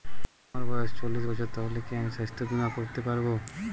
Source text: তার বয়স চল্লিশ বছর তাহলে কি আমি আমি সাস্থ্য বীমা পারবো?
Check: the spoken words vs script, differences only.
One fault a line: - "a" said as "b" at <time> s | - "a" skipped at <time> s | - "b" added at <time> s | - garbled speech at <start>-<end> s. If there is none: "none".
- "তার" said as "আমার" at 0.5 s
- "আমি" skipped at 2.1 s
- "করতে" added at 2.8 s